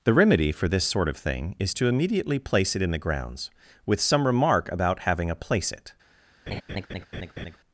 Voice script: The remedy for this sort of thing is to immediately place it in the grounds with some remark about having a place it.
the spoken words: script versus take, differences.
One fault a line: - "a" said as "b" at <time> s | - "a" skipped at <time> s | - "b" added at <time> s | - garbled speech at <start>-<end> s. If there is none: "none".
none